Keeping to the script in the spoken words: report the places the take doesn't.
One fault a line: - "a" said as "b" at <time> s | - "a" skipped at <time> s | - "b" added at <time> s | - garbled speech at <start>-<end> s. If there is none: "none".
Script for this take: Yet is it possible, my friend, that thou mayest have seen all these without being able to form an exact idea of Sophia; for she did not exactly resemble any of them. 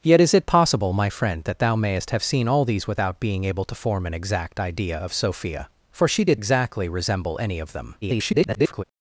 - "not" skipped at 6.4 s
- garbled speech at 8.0-8.8 s